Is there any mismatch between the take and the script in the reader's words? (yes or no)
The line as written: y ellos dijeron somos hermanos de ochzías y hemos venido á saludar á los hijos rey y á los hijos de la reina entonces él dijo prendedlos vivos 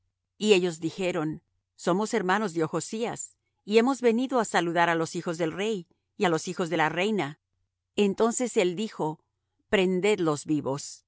yes